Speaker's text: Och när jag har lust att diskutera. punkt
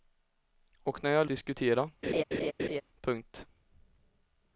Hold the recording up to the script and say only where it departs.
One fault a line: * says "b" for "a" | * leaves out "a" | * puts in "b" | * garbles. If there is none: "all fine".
* leaves out "lust att"